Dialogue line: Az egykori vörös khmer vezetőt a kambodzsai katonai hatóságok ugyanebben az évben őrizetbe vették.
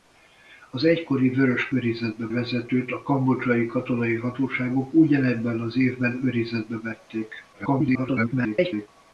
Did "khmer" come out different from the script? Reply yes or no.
yes